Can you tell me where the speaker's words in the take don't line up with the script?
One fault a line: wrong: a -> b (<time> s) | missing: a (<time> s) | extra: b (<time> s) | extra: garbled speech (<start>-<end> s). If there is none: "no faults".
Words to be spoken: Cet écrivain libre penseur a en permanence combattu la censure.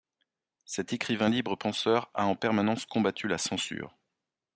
no faults